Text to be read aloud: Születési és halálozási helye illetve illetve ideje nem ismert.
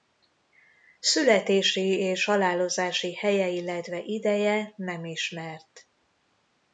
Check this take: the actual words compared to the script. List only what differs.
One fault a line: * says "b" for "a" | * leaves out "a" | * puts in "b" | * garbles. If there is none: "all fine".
* leaves out "illetve"